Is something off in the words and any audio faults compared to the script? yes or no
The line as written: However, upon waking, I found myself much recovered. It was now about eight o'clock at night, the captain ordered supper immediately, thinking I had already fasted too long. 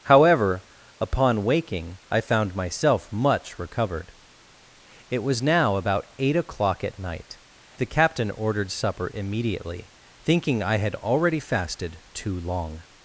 no